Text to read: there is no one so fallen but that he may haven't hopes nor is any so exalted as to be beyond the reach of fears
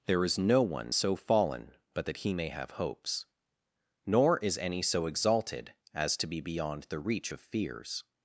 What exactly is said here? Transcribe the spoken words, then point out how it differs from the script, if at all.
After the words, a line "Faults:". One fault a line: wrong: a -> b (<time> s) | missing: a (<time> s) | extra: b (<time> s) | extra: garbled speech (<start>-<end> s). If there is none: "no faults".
there is no one so fallen but that he may have hopes nor is any so exalted as to be beyond the reach of fears
Faults:
wrong: haven't -> have (2.5 s)